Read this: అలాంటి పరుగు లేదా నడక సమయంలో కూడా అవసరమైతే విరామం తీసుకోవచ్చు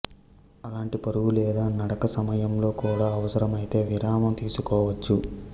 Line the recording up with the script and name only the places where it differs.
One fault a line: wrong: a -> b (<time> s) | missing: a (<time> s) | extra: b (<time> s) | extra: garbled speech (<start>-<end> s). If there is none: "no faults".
no faults